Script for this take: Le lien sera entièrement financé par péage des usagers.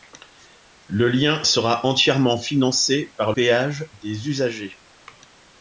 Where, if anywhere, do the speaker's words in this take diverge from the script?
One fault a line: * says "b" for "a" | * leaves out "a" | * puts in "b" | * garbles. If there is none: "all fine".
all fine